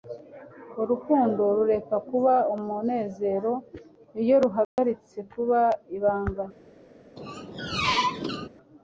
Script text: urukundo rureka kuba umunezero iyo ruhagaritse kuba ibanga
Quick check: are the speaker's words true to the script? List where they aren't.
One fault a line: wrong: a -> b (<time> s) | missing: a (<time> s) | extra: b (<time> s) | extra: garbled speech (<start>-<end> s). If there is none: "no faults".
no faults